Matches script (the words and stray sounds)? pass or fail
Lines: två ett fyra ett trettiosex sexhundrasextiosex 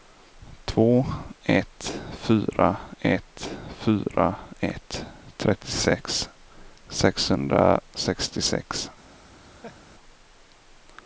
fail